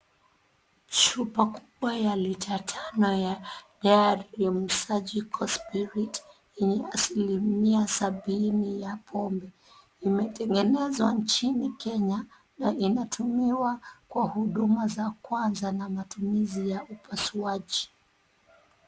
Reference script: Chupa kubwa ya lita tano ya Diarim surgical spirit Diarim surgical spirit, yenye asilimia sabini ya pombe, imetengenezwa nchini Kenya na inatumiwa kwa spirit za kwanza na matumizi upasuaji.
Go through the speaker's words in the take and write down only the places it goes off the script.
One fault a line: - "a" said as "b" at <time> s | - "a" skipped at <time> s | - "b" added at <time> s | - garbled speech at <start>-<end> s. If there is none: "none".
- "Diarim surgical spirit" skipped at 6.1 s
- "spirit" said as "huduma" at 14.3 s
- "ya" added at 16.7 s